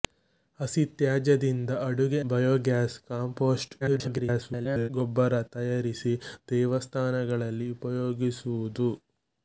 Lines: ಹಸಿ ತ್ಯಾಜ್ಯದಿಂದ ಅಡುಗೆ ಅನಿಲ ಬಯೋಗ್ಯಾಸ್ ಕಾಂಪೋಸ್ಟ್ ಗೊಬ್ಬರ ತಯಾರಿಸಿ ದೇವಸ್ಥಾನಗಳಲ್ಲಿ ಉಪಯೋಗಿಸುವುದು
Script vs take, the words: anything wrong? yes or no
yes